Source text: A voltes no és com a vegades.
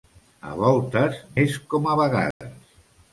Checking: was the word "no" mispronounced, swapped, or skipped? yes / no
yes